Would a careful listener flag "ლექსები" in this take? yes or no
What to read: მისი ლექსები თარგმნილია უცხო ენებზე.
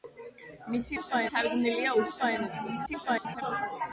yes